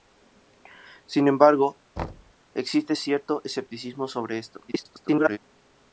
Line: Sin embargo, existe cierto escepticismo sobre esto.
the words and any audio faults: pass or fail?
fail